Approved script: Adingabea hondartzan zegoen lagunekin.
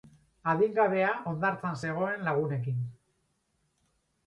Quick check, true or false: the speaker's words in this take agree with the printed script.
true